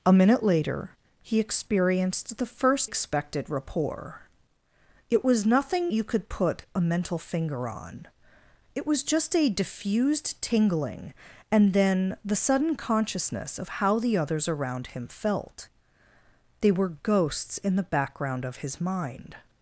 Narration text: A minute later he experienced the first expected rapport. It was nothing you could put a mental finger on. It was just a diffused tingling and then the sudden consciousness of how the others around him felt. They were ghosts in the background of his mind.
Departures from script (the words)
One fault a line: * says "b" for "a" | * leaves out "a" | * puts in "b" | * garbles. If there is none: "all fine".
all fine